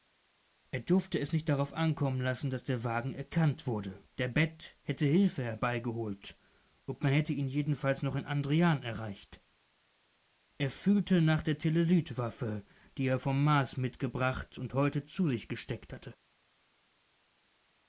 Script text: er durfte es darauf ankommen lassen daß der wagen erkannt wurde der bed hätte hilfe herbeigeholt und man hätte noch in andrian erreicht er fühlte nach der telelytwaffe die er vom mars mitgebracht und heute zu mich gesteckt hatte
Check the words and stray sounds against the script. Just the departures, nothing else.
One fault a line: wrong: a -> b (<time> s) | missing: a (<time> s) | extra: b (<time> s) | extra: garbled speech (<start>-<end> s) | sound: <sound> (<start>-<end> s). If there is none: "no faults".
extra: nicht (1.3 s)
extra: ihn jedenfalls (7.3 s)
wrong: mich -> sich (15.3 s)